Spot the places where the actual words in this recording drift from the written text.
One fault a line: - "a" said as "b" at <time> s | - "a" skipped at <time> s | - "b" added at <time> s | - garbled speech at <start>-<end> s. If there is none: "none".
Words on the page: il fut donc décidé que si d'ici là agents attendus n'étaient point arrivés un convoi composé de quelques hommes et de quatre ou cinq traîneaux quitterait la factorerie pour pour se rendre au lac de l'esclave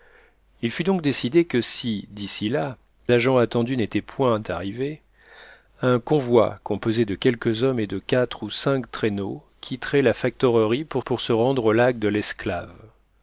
none